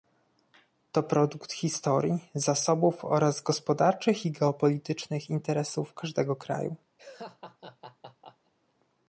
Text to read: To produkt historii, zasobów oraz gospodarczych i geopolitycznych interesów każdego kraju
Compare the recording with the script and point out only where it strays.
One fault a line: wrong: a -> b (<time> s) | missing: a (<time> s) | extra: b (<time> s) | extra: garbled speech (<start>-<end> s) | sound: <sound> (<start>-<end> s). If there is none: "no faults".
sound: laugh (7.0-8.5 s)